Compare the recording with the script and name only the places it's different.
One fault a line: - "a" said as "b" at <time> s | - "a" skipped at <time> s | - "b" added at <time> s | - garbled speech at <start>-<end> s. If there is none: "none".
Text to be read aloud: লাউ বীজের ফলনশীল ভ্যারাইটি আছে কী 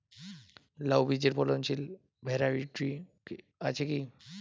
none